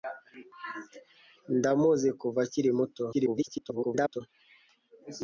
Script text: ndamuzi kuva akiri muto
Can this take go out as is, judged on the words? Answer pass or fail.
fail